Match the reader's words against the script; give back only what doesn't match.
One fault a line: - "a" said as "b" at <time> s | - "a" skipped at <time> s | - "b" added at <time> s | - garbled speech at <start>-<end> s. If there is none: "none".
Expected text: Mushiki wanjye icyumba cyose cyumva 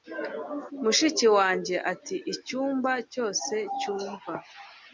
- "ati" added at 1.9 s